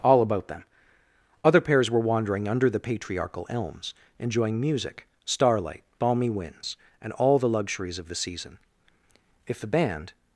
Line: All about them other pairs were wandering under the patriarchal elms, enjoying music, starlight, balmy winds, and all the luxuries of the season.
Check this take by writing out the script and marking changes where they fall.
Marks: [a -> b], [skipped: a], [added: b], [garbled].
All about them other pairs were wandering under the patriarchal elms, enjoying music, starlight, balmy winds, and all the luxuries of the season. [added: If the band]